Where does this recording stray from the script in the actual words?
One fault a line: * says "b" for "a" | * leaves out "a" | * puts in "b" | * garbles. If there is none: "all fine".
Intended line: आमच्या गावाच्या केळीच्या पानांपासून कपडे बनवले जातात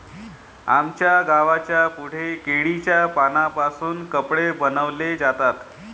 * puts in "पुढे"